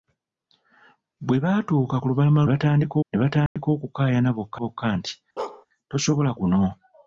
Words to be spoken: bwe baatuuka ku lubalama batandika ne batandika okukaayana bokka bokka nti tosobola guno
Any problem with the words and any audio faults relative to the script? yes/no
yes